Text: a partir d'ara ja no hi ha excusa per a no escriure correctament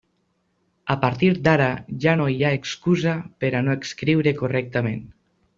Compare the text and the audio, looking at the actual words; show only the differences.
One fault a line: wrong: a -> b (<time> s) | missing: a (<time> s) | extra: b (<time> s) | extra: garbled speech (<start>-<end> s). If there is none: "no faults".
no faults